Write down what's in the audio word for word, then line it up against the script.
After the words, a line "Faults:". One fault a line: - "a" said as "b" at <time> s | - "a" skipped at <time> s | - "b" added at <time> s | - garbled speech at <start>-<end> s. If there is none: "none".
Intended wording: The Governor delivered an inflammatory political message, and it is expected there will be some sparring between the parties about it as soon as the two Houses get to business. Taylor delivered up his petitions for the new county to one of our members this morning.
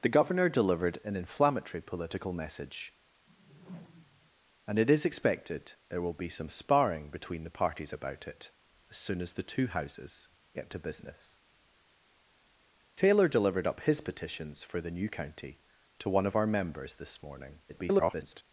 The Governor delivered an inflammatory political message, and it is expected there will be some sparring between the parties about it as soon as the two Houses get to business. Taylor delivered up his petitions for the new county to one of our members this morning. [garbled]
Faults:
- garbled speech at 17.7-18.4 s